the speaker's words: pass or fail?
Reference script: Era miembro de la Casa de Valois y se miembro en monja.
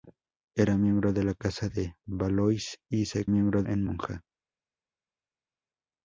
pass